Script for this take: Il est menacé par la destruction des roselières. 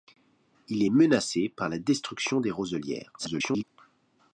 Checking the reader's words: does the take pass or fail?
fail